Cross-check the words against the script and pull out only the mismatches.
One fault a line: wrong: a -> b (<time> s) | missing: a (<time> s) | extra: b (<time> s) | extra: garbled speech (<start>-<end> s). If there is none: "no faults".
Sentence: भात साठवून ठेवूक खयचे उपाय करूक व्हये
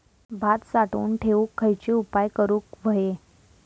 no faults